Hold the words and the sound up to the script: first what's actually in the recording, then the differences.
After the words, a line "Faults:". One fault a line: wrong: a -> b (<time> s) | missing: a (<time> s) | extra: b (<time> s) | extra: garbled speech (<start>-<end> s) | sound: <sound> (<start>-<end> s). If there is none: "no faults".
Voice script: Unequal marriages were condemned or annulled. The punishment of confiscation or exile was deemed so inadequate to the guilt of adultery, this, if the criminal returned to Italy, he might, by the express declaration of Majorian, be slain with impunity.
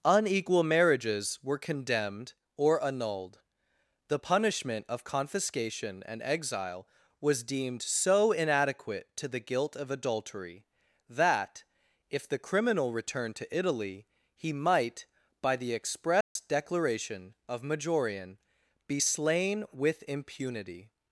Unequal marriages were condemned or annulled. The punishment of confiscation and exile was deemed so inadequate to the guilt of adultery, that, if the criminal returned to Italy, he might, by the express declaration of Majorian, be slain with impunity.
Faults:
wrong: or -> and (6.0 s)
wrong: this -> that (11.1 s)
sound: dropout (16.2-16.4 s)